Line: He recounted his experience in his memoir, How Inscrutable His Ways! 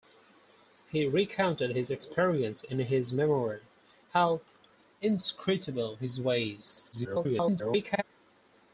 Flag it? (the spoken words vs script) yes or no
yes